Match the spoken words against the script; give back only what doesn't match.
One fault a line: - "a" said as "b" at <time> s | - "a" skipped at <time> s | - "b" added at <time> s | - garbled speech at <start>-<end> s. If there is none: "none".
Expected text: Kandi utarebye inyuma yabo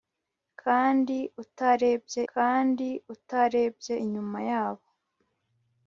- "kandi utarebye" added at 2.3 s